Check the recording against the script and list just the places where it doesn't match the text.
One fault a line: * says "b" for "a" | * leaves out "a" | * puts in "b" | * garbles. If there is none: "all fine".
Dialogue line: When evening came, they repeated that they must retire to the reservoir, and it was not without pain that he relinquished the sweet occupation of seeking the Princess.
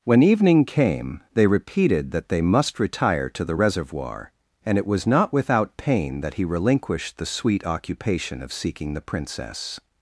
all fine